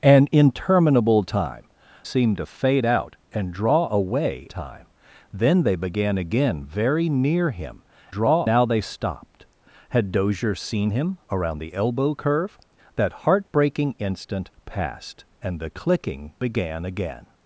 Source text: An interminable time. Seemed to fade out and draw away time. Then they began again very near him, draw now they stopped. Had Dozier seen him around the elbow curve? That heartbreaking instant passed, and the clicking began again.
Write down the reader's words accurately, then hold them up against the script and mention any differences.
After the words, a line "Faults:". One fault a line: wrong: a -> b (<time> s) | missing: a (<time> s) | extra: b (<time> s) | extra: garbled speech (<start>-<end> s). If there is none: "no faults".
An interminable time. Seemed to fade out and draw away time. Then they began again very near him, draw now they stopped. Had Dozier seen him around the elbow curve? That heartbreaking instant passed, and the clicking began again.
Faults:
no faults